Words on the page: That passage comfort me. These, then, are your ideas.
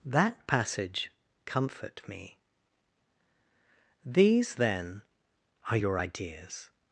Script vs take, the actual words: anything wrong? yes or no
no